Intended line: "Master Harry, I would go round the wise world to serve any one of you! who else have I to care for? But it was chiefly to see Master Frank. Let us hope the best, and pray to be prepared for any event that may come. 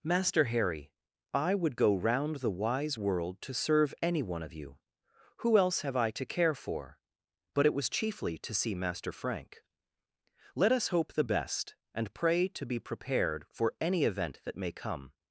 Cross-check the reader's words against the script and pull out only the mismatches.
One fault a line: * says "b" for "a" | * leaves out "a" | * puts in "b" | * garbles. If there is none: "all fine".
all fine